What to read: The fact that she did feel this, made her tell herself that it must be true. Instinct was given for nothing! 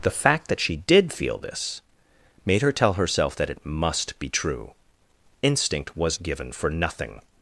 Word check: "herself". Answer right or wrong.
right